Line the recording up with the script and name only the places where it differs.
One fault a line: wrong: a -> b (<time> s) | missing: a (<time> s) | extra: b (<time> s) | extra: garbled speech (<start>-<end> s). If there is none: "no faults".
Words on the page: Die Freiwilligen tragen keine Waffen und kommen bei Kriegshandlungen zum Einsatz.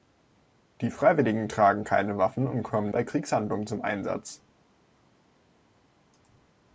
no faults